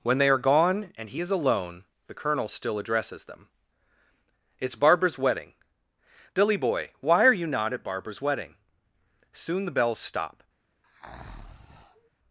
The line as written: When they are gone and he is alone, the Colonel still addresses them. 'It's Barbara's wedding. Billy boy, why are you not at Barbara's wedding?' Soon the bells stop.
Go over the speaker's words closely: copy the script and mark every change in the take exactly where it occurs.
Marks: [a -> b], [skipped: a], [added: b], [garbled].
When they are gone and he is alone, the Colonel still addresses them. 'It's Barbara's wedding. Billy boy, why are you not at Barbara's wedding?' Soon the bells stop.